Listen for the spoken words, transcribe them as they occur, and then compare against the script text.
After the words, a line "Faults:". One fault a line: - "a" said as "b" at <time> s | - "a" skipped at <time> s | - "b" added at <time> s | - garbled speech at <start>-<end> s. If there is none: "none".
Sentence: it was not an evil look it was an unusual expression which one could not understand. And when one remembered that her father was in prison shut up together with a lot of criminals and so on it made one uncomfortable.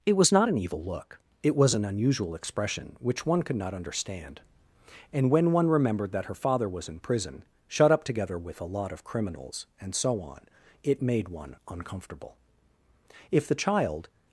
it was not an evil look it was an unusual expression which one could not understand. And when one remembered that her father was in prison shut up together with a lot of criminals and so on it made one uncomfortable. If the child
Faults:
- "If the child" added at 13.3 s